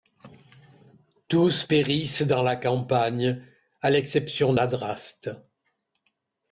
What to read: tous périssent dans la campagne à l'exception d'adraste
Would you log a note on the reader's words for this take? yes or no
no